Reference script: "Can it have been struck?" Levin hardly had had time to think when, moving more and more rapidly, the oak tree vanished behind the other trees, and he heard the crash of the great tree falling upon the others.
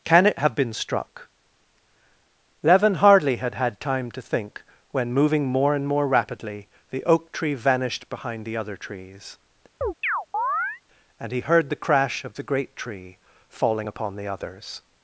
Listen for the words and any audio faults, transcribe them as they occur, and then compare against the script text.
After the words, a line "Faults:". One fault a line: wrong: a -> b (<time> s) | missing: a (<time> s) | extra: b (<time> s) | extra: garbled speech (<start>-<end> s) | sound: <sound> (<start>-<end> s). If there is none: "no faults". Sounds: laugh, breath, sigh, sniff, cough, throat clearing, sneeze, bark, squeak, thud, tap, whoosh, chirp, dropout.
"Can it have been struck?" Levin hardly had had time to think when, moving more and more rapidly, the oak tree vanished behind the other trees, and he heard the crash of the great tree falling upon the others.
Faults:
sound: chirp (9.8-10.8 s)